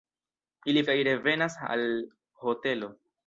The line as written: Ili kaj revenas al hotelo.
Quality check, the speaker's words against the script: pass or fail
pass